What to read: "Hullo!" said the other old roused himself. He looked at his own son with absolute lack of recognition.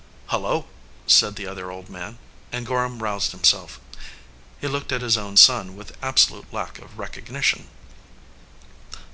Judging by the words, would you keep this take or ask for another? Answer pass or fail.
fail